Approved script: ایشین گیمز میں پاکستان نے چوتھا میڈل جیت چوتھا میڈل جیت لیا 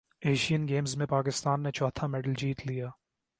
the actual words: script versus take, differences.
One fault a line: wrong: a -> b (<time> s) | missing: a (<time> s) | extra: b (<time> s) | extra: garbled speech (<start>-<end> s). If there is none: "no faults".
missing: چوتھا میڈل جیت (2.6 s)